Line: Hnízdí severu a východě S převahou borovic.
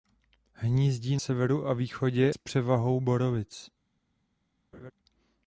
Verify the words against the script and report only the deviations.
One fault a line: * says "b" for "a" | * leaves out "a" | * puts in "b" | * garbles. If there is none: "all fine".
all fine